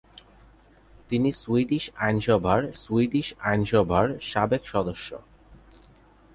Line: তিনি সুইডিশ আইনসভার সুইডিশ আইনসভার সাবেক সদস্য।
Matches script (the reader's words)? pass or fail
pass